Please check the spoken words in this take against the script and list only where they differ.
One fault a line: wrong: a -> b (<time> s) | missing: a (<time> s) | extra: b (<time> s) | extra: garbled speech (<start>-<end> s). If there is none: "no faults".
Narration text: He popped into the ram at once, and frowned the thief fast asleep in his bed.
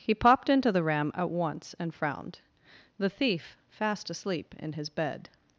no faults